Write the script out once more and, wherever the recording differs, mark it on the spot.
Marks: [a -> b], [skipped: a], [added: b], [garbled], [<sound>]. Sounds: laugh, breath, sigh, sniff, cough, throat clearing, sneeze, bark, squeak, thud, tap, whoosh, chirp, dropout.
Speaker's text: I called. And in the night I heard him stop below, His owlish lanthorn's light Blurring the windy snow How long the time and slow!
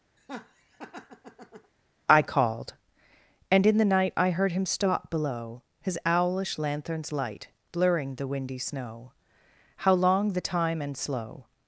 [laugh] I called. And in the night I heard him stop below, His owlish lanthorn's light Blurring the windy snow How long the time and slow!